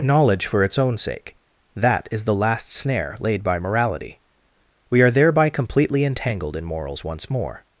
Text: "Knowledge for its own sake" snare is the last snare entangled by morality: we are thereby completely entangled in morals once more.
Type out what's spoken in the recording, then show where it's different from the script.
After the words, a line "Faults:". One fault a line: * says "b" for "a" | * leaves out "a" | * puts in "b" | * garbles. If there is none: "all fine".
"Knowledge for its own sake" that is the last snare laid by morality: we are thereby completely entangled in morals once more.
Faults:
* says "that" for "snare"
* says "laid" for "entangled"